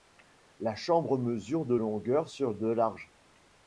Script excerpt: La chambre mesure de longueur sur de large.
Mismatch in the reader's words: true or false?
false